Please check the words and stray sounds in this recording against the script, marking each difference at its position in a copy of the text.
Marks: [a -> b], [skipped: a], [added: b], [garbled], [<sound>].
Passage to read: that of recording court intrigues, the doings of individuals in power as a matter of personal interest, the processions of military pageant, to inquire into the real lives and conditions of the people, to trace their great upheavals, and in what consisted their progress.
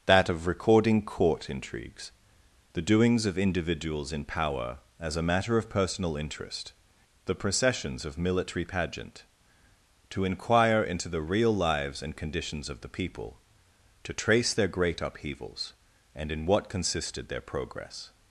that of recording court intrigues, the doings of individuals in power as a matter of personal interest, the processions of military pageant, to inquire into the real lives and conditions of the people, to trace their great upheavals, and in what consisted their progress.